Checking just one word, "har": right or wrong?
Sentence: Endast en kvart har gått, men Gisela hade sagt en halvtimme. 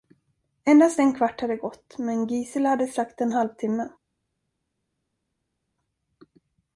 wrong